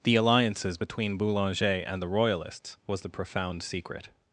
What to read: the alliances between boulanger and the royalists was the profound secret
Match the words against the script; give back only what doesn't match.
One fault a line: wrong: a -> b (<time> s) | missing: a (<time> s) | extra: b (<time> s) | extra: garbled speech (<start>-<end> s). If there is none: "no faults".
no faults